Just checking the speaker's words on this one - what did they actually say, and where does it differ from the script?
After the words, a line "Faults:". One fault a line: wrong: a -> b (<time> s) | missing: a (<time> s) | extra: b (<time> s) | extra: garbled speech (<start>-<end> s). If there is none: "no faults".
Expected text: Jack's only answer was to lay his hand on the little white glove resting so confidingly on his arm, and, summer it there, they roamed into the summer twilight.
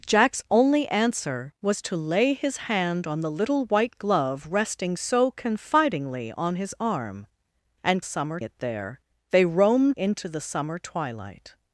Jack's only answer was to lay his hand on the little white glove resting so confidingly on his arm, and, summer it there, they roamed into the summer twilight.
Faults:
no faults